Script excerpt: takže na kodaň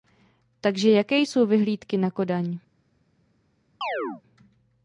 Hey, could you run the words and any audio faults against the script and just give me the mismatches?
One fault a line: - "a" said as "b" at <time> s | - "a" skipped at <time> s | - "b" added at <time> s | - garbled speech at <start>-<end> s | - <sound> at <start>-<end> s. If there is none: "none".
- "jaké jsou vyhlídky" added at 0.9 s
- chirp at 3.8-4.2 s